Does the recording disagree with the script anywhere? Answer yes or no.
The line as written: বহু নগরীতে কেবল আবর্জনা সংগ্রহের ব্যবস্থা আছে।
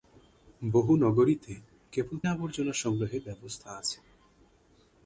no